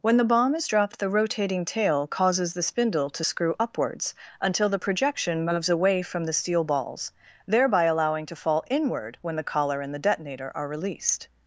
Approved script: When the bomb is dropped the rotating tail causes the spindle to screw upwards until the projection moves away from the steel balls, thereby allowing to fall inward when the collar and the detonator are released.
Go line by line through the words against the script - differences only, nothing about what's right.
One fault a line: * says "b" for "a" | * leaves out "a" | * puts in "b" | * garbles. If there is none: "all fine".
all fine